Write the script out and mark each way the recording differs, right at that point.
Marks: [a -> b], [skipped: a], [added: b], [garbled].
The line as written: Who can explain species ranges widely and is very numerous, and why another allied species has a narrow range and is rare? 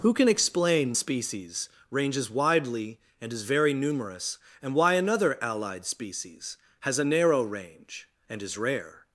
Who can explain species ranges widely and is very numerous, and why another allied species has a narrow range and is rare?